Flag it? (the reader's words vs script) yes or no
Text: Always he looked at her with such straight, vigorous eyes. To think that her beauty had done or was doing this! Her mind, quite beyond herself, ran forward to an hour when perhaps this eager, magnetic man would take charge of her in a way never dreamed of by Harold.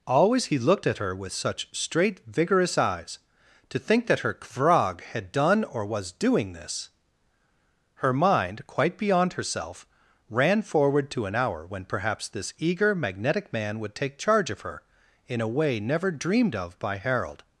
yes